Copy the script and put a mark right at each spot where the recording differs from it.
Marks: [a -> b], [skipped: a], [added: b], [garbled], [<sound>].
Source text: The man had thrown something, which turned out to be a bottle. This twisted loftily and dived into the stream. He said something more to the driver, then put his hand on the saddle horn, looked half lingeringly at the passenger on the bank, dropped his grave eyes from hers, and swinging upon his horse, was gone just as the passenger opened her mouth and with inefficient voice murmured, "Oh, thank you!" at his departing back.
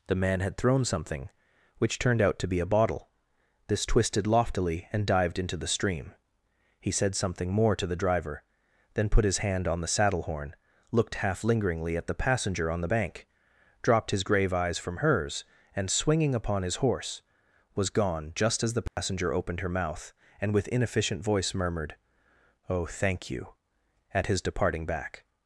The man had thrown something, which turned out to be a bottle. This twisted loftily and dived into the stream. He said something more to the driver, then put his hand on the saddle horn, looked half lingeringly at the passenger on the bank, dropped his grave eyes from hers, and swinging upon his horse, was gone just as the passenger [dropout] opened her mouth and with inefficient voice murmured, "Oh, thank you!" at his departing back.